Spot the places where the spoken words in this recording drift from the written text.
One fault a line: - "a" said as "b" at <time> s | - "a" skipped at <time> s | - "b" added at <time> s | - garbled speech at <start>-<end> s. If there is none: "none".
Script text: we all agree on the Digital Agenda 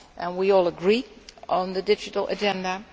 none